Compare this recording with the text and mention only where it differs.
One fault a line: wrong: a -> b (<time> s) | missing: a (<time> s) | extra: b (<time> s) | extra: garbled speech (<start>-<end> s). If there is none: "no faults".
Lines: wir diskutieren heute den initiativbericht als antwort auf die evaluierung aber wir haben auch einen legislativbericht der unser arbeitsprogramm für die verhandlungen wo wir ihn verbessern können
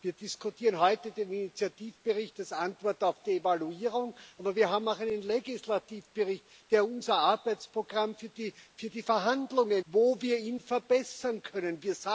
no faults